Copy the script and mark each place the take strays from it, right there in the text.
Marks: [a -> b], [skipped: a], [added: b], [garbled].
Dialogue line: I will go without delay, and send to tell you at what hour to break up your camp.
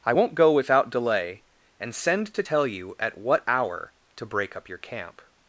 I [will -> won't] go without delay, and send to tell you at what hour to break up your camp.